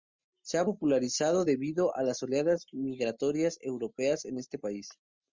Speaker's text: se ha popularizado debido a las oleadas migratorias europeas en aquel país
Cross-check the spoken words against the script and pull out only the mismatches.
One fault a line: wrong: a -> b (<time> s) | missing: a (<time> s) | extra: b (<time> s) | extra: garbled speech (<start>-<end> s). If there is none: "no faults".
wrong: aquel -> este (4.4 s)